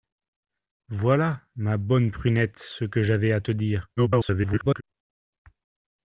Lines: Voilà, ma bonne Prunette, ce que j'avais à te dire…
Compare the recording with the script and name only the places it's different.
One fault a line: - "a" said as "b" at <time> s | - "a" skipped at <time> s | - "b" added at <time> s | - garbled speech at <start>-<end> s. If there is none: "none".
- garbled speech at 4.0-4.8 s